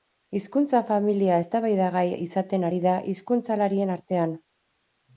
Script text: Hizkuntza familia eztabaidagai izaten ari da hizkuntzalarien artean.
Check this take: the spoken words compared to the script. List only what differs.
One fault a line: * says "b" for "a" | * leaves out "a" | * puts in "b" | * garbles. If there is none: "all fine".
all fine